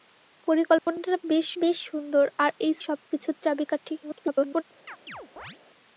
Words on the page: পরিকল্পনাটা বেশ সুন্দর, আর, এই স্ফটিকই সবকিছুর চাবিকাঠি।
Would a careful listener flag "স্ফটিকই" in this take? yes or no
yes